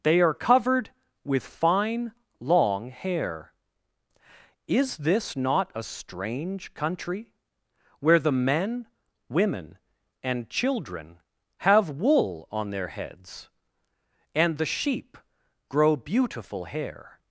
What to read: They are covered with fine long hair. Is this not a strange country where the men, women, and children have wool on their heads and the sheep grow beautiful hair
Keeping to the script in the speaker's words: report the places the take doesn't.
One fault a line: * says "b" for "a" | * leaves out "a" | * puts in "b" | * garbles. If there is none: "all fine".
all fine